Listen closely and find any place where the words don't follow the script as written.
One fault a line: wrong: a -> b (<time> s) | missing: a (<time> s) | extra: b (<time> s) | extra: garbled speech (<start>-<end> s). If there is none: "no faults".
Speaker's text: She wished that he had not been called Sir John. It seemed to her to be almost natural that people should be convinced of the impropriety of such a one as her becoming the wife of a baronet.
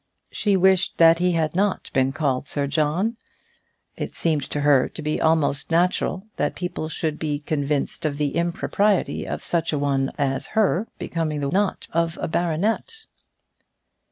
wrong: wife -> not (11.5 s)